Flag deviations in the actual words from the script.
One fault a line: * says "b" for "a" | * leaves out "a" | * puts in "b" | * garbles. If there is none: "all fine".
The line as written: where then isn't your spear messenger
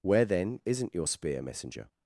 all fine